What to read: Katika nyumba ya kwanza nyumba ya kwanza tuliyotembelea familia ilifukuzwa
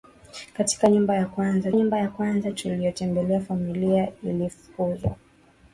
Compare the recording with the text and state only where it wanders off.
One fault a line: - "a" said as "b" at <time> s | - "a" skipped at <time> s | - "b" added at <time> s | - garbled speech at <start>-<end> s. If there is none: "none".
none